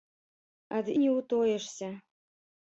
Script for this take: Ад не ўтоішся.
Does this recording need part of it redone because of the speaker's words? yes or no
no